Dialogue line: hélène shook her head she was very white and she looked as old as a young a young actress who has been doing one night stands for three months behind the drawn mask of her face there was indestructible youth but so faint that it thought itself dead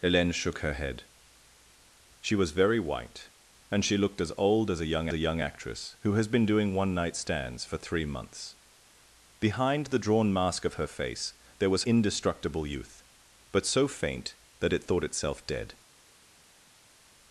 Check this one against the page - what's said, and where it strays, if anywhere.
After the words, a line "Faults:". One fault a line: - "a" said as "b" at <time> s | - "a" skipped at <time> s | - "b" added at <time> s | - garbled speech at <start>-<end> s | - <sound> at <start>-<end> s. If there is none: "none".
hélène shook her head she was very white and she looked as old as a young a young actress who has been doing one night stands for three months behind the drawn mask of her face there was indestructible youth but so faint that it thought itself dead
Faults:
none